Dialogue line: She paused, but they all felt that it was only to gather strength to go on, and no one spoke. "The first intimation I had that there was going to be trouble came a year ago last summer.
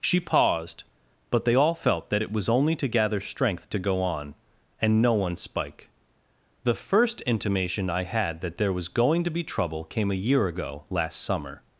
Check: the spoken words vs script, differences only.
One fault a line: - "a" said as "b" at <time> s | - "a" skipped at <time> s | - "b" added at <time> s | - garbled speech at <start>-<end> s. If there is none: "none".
- "spoke" said as "spike" at 5.4 s